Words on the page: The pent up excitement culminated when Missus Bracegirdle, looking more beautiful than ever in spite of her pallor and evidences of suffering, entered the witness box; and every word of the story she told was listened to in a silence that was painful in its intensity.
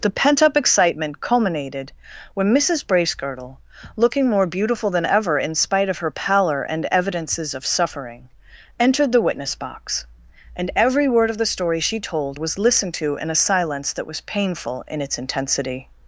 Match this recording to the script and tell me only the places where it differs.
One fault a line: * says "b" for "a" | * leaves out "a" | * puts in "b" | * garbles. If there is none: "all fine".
all fine